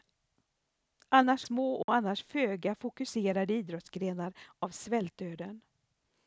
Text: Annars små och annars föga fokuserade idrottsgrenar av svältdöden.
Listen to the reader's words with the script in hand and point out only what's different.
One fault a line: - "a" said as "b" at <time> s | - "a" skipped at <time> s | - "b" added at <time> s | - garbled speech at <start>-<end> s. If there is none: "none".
none